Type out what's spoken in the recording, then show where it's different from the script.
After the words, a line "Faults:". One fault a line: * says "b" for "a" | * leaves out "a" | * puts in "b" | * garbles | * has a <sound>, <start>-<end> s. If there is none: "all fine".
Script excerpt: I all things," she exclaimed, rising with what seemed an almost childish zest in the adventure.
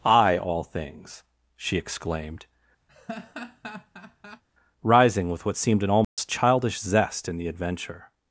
I all things," she exclaimed, rising with what seemed an almost childish zest in the adventure.
Faults:
* has a laugh, 2.9-4.4 s
* has a dropout, 6.0-6.2 s